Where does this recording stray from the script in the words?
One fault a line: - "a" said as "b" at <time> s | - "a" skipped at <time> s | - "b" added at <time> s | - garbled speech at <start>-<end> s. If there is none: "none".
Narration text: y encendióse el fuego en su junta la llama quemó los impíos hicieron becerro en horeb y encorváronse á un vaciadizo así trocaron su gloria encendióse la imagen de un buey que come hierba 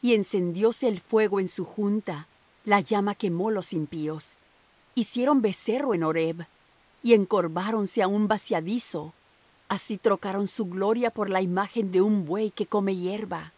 - "encendióse" said as "por" at 11.1 s